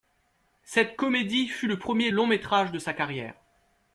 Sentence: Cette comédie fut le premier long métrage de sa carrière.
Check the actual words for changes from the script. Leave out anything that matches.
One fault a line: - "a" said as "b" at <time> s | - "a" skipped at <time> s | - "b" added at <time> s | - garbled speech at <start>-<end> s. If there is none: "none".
none